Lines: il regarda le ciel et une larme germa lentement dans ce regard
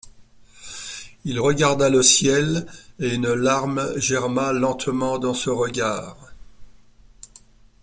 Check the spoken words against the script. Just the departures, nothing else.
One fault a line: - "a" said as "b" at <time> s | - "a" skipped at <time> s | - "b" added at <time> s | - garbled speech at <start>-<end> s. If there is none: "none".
none